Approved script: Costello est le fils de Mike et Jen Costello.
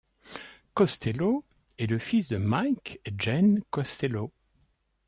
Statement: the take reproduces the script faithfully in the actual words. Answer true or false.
true